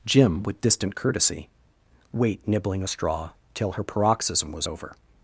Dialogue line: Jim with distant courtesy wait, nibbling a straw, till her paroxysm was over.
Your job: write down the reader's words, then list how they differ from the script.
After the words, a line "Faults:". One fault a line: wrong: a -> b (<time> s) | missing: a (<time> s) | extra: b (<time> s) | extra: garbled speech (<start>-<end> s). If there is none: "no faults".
Jim with distant courtesy wait, nibbling a straw, till her paroxysm was over.
Faults:
no faults